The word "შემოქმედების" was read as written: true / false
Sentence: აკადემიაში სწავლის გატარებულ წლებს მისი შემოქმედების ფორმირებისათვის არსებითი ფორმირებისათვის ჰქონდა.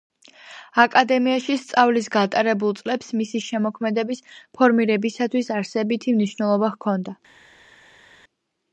true